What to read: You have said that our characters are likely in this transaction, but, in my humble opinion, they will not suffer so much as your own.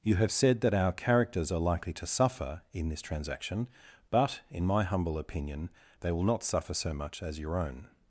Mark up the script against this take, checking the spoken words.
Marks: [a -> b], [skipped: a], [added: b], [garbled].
You have said that our characters are likely [added: to suffer] in this transaction, but, in my humble opinion, they will not suffer so much as your own.